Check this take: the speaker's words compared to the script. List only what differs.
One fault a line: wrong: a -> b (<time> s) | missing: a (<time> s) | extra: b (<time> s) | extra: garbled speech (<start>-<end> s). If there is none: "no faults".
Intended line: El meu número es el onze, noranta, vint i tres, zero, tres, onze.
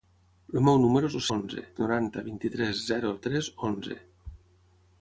no faults